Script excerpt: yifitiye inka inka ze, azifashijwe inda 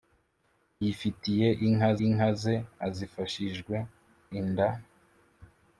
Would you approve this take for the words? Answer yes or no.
yes